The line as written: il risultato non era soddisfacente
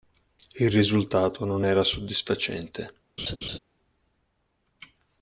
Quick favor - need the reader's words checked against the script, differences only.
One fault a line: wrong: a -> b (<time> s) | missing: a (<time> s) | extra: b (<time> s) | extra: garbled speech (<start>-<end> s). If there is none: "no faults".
no faults